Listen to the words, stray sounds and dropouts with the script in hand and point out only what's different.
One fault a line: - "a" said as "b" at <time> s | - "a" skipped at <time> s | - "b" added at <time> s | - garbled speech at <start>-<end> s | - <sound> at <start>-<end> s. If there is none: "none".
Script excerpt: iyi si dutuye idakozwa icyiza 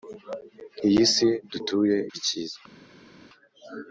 - "idakozwa" skipped at 2.0 s